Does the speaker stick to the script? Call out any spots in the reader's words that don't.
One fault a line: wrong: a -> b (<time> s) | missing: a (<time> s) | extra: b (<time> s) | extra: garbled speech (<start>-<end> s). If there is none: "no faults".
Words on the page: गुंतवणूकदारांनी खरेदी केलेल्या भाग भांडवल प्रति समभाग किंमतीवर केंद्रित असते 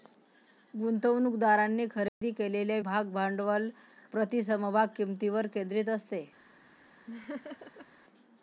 no faults